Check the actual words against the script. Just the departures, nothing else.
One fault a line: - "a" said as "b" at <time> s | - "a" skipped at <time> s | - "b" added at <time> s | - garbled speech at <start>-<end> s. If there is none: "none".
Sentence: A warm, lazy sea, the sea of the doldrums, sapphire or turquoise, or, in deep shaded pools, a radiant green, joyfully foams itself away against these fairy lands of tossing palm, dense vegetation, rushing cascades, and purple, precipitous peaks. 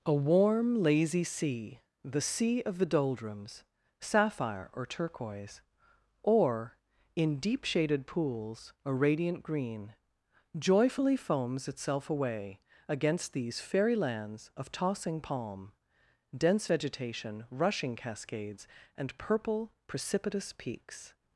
none